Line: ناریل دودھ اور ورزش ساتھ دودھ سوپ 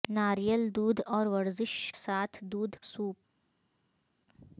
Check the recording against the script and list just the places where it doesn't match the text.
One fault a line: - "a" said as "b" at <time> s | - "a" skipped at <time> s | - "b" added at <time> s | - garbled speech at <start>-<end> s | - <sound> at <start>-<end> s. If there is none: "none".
none